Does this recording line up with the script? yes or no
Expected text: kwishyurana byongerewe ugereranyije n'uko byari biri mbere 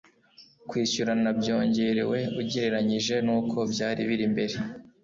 yes